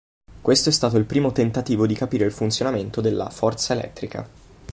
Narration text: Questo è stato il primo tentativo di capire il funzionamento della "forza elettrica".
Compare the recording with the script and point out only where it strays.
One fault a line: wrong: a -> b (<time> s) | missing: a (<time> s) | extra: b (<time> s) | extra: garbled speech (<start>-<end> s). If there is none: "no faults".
no faults